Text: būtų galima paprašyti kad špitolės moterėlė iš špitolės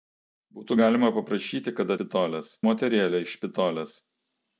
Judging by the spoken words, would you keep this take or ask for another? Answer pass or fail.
pass